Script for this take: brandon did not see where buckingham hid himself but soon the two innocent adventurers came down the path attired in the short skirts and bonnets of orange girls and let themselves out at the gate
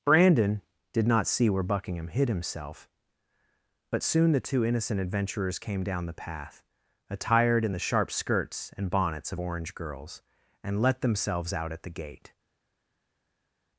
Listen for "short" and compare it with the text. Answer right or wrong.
wrong